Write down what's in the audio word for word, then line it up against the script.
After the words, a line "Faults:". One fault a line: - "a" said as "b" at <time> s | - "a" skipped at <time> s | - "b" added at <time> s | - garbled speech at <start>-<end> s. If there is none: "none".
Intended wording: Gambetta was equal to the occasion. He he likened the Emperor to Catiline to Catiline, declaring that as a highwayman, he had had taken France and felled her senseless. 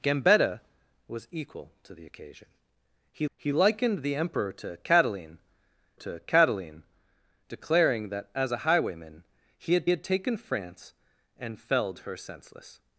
Gambetta was equal to the occasion. He he likened the Emperor to Catiline to Catiline, declaring that as a highwayman, he had had taken France and felled her senseless.
Faults:
none